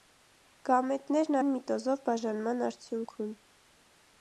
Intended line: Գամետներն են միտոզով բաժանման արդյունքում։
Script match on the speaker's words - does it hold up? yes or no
yes